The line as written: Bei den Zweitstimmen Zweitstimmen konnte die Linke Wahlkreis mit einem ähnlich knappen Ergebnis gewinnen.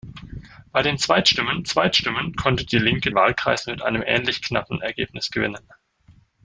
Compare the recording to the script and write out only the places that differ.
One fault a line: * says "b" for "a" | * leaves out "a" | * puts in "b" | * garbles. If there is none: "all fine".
all fine